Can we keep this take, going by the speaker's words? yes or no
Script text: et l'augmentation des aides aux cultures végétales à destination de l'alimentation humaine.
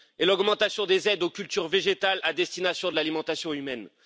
yes